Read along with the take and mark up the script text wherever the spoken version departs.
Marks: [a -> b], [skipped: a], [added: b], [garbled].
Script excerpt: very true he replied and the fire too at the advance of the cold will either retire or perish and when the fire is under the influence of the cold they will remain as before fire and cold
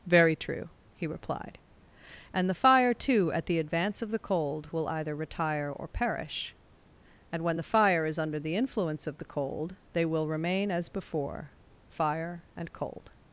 very true he replied and the fire too at the advance of the cold will either retire or perish and when the fire is under the influence of the cold they will remain as before fire and cold